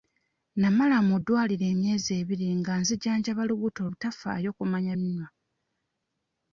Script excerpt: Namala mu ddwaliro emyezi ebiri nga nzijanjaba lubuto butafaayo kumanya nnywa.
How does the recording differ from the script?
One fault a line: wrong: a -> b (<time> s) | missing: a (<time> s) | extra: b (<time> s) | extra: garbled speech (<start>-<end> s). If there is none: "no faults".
no faults